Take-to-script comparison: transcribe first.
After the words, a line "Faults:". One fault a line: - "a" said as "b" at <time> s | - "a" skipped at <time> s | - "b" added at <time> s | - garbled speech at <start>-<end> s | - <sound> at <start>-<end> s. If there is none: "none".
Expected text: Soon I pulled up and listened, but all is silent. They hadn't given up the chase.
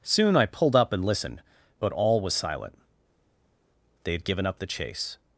Soon I pulled up and listened, but all was silent. They had given up the chase.
Faults:
- "is" said as "was" at 2.2 s
- "hadn't" said as "had" at 4.1 s